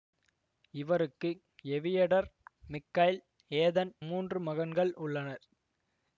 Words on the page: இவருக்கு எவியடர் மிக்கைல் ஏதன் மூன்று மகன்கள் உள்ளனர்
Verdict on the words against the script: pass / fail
pass